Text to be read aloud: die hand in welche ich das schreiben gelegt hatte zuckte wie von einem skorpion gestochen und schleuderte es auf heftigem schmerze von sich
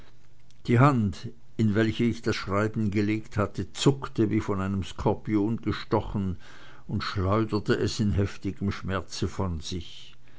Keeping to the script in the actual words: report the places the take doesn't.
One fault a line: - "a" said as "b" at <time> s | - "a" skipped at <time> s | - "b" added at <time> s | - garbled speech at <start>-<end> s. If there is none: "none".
- "auf" said as "in" at 8.0 s